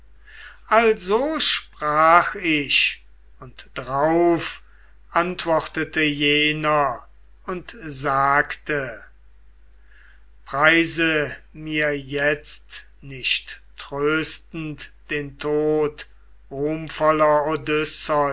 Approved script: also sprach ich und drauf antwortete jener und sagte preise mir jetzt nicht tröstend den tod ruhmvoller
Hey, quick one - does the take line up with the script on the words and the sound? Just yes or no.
yes